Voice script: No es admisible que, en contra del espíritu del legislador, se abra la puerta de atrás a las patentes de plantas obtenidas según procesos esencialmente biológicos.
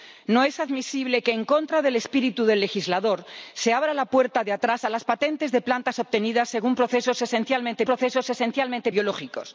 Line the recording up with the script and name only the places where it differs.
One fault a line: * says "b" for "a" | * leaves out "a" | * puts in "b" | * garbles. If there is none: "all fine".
* puts in "procesos esencialmente"